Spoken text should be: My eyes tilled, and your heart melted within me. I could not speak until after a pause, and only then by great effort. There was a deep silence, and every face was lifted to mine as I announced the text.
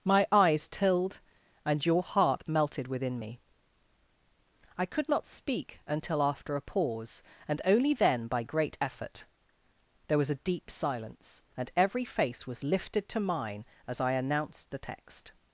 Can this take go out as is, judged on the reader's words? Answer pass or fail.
pass